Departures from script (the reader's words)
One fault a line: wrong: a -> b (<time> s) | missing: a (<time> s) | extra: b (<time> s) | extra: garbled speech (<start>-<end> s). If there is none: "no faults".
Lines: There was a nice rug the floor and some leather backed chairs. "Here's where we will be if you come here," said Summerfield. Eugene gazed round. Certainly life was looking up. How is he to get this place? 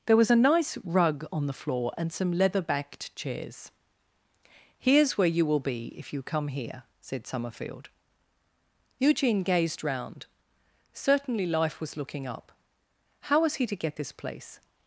extra: on (1.3 s)
wrong: we -> you (5.3 s)
wrong: is -> was (13.4 s)